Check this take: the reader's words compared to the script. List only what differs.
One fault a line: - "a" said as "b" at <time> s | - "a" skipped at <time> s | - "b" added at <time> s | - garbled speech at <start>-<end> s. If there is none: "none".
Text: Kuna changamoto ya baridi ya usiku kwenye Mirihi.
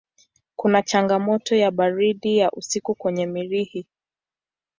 none